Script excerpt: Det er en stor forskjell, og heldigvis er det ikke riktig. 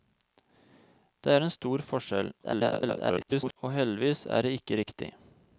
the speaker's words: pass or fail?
fail